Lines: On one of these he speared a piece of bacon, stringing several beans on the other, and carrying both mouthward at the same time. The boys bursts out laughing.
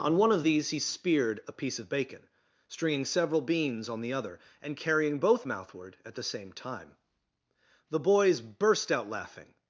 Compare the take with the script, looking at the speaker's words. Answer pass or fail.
fail